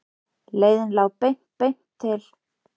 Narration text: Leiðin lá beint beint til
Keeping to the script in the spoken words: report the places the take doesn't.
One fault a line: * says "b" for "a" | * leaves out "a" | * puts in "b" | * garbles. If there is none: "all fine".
all fine